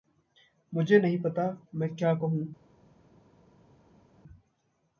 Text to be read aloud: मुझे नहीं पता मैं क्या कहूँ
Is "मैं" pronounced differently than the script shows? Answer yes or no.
no